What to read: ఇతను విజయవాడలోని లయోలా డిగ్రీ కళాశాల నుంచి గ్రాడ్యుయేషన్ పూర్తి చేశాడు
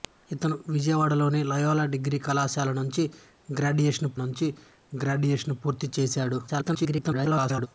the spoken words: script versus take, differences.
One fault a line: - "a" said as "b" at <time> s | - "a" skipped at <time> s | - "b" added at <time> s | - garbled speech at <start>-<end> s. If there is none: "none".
- "నుంచి గ్రాడ్యుయేషన్" added at 4.2 s
- garbled speech at 6.5-7.7 s